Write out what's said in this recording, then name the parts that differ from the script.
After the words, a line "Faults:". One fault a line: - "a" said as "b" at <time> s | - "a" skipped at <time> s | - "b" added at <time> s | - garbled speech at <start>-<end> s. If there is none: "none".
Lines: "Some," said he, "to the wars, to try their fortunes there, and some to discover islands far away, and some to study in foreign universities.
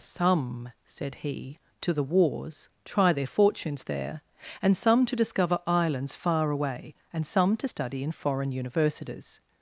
"Some," said he, "to the wars, try their fortunes there, and some to discover islands far away, and some to study in foreign universities.
Faults:
- "to" skipped at 2.7 s